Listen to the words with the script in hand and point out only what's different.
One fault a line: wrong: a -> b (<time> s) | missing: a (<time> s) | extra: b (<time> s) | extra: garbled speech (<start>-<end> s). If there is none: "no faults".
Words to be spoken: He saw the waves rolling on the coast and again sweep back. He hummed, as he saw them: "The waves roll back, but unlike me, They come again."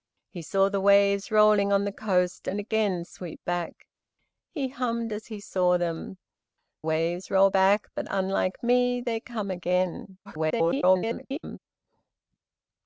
missing: The (6.2 s)
extra: garbled speech (10.2-11.6 s)